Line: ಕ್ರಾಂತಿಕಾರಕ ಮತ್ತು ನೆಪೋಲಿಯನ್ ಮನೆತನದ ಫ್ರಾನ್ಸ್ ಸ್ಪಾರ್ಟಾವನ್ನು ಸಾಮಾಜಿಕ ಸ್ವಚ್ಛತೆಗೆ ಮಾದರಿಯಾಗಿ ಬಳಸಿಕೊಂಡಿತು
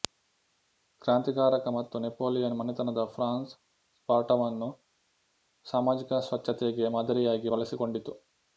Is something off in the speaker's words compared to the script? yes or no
no